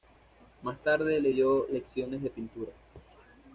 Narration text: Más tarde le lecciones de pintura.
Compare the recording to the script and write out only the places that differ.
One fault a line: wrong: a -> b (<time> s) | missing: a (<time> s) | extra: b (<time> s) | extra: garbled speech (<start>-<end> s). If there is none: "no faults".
extra: dio (1.3 s)